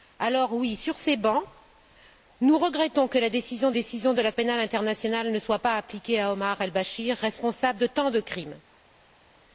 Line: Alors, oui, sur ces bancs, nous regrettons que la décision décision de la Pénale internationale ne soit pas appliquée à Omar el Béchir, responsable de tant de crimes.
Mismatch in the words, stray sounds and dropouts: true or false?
false